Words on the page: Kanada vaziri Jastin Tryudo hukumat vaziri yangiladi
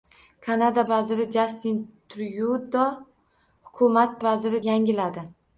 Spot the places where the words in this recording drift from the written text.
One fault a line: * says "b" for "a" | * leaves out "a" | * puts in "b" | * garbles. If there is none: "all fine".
all fine